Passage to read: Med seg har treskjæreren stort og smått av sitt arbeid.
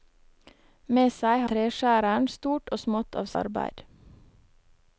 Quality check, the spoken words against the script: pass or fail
fail